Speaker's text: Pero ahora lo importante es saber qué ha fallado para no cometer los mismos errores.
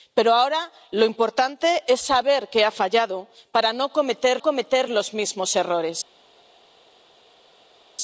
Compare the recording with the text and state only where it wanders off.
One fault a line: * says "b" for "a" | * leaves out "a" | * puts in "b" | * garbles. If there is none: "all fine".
* puts in "cometer"